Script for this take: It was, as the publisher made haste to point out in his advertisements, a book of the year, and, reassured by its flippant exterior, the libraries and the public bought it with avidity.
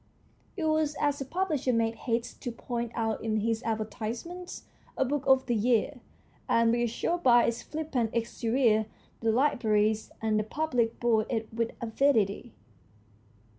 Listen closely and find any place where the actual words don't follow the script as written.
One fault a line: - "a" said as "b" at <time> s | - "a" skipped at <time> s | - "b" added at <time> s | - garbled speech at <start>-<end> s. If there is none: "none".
none